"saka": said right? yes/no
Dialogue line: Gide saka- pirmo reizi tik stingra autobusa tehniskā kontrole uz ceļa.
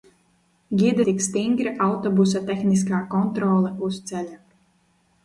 no